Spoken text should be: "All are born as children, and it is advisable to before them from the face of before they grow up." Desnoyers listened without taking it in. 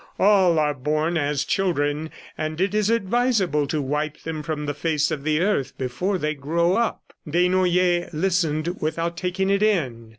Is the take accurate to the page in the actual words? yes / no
no